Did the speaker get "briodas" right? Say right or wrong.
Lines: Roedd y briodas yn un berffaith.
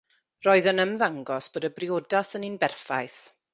right